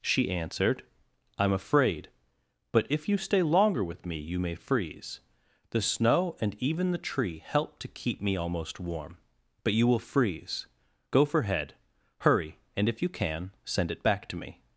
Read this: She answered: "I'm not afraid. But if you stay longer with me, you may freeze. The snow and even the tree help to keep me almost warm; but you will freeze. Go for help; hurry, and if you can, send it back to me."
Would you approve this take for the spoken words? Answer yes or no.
no